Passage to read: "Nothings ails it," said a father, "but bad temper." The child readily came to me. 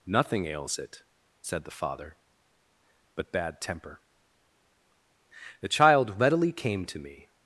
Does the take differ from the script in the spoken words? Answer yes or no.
yes